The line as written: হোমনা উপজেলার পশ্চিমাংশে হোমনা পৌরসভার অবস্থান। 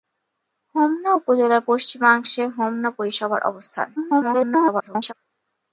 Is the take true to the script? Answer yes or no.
no